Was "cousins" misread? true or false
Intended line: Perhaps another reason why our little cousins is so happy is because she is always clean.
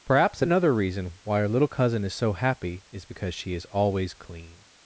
true